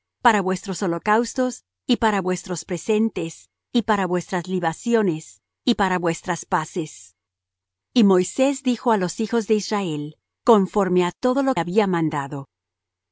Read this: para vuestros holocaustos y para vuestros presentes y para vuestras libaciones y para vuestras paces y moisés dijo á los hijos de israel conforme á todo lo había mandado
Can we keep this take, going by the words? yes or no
yes